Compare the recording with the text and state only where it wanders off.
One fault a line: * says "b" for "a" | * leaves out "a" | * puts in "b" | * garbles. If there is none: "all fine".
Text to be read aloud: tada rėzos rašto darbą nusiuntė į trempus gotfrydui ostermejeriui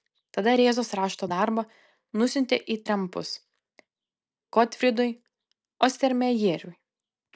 all fine